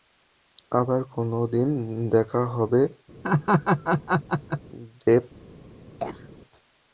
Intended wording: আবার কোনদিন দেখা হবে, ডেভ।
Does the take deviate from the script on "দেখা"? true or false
false